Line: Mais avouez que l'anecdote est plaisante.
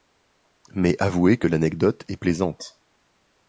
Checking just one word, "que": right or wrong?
right